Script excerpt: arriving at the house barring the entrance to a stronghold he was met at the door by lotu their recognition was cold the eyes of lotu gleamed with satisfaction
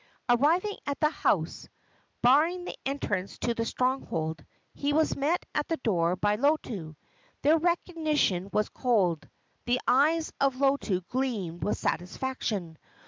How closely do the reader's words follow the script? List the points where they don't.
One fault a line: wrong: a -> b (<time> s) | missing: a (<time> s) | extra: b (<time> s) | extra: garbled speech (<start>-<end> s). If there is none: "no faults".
wrong: a -> the (3.5 s)